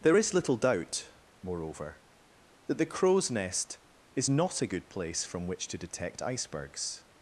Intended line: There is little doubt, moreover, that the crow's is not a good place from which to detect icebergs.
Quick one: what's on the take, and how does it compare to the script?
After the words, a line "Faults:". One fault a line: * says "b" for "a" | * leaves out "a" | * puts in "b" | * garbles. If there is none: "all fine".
There is little doubt, moreover, that the crow's nest is not a good place from which to detect icebergs.
Faults:
* puts in "nest"